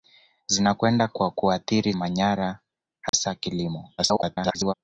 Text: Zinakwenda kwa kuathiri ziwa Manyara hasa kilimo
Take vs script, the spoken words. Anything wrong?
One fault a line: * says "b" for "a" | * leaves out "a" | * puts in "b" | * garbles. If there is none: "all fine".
* leaves out "ziwa"
* garbles